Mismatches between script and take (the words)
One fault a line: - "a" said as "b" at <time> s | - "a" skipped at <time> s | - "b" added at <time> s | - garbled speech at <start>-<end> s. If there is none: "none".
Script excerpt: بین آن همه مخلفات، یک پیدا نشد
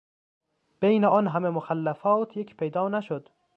none